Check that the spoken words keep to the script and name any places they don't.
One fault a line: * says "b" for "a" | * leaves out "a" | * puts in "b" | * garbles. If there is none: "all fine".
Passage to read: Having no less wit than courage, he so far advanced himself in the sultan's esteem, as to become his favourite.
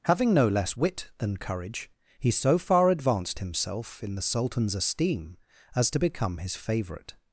all fine